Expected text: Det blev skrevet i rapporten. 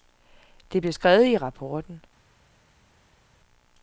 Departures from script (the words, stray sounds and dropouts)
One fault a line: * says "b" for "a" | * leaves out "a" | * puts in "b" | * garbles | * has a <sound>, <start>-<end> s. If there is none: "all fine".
all fine